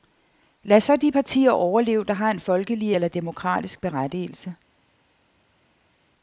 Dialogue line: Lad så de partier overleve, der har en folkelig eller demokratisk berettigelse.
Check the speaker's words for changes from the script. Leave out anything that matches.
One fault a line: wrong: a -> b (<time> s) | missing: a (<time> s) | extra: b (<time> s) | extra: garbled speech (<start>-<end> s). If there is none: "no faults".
no faults